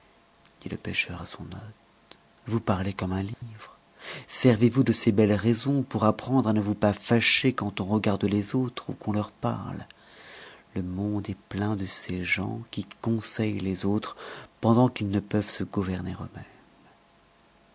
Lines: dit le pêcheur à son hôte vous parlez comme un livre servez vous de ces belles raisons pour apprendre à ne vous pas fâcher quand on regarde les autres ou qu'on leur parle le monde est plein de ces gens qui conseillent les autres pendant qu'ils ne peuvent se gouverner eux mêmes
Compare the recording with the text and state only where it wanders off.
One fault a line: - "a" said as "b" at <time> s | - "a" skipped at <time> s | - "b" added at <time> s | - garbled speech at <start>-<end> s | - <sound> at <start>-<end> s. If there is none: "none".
- dropout at 3.3-3.4 s